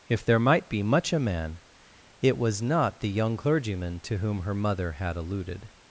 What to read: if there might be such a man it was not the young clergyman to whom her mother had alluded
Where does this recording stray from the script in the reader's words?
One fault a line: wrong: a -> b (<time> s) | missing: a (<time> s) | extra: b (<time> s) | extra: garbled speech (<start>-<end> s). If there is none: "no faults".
wrong: such -> much (0.8 s)